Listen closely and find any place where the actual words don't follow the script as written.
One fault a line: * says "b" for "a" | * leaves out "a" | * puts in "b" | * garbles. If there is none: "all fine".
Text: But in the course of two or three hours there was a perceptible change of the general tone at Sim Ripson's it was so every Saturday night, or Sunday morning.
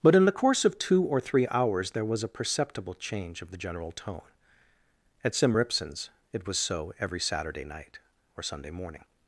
all fine